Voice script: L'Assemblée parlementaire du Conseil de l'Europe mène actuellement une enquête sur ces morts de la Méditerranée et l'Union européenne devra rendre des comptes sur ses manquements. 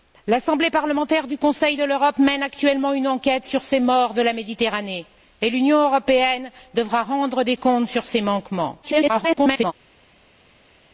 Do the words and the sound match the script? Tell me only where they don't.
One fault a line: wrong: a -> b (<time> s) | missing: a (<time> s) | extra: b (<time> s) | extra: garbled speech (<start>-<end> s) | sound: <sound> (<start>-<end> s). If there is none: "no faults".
extra: garbled speech (8.8-9.7 s)